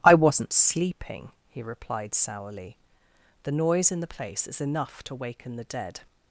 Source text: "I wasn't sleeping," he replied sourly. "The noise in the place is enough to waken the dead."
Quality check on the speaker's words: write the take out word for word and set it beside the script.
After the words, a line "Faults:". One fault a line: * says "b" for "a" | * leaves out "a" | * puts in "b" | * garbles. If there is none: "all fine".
"I wasn't sleeping," he replied sourly. "The noise in the place is enough to waken the dead."
Faults:
all fine